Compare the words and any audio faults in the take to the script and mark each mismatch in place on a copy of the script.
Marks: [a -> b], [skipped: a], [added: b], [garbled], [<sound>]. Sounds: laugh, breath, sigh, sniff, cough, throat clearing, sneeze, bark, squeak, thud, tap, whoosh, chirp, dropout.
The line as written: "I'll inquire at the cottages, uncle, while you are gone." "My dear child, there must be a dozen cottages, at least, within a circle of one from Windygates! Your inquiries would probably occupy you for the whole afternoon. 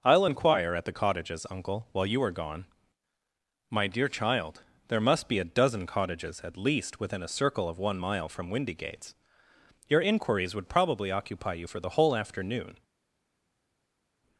"I'll inquire at the cottages, uncle, while you are gone." "My dear child, there must be a dozen cottages, at least, within a circle of one [added: mile] from Windygates! Your inquiries would probably occupy you for the whole afternoon.